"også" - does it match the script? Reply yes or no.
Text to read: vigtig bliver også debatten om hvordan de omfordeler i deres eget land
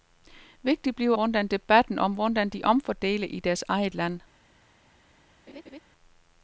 no